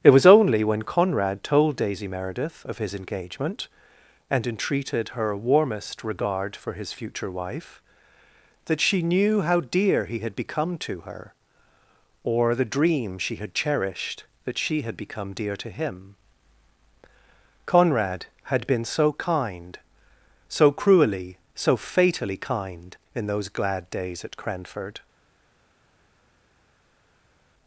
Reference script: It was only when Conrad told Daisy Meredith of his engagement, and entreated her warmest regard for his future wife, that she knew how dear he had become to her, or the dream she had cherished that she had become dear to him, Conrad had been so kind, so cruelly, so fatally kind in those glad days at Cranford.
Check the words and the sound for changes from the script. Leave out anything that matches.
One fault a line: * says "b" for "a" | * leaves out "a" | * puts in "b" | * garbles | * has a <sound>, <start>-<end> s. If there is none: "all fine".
all fine